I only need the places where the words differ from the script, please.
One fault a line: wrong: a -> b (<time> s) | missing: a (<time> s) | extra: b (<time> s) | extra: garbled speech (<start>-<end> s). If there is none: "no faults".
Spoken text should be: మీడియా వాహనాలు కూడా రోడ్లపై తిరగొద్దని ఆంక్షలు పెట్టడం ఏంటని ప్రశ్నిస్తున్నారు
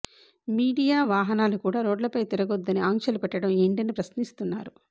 no faults